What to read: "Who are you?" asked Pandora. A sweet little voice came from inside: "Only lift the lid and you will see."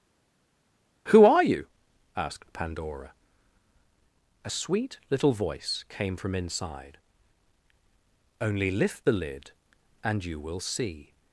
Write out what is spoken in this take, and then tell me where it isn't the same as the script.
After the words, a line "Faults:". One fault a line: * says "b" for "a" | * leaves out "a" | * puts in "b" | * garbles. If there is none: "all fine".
"Who are you?" asked Pandora. A sweet little voice came from inside: "Only lift the lid and you will see."
Faults:
all fine